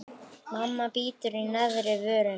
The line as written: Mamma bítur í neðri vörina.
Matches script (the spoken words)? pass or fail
pass